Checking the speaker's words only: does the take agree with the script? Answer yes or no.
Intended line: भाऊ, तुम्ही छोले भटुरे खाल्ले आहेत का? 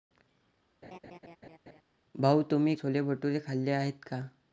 yes